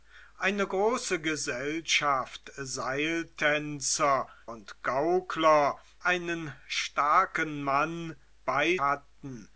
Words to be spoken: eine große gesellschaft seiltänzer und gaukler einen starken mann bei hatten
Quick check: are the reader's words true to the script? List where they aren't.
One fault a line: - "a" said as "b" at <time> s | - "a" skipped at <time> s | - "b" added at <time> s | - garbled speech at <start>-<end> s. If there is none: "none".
none